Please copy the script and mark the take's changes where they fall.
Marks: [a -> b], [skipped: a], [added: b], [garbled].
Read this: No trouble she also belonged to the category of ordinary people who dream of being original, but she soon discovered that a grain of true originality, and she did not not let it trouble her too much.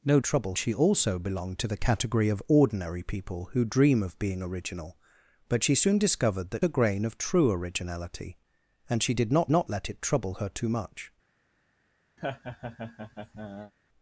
No trouble she also belonged to the category of ordinary people who dream of being original, but she soon discovered that a grain of true originality, and she did not not let it trouble her too much.